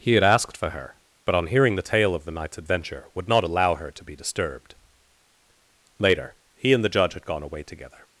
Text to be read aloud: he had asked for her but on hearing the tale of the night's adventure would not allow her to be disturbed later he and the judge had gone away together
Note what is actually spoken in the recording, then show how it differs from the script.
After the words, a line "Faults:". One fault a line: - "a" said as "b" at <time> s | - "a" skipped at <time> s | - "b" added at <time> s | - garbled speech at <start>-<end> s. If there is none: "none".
he had asked for her but on hearing the tale of the night's adventure would not allow her to be disturbed later he and the judge had gone away together
Faults:
none